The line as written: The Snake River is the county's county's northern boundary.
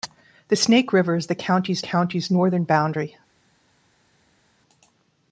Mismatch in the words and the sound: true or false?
false